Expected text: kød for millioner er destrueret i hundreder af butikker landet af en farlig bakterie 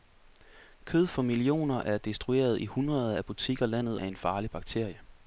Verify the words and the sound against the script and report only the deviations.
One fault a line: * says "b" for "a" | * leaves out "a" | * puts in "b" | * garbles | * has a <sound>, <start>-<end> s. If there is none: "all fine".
all fine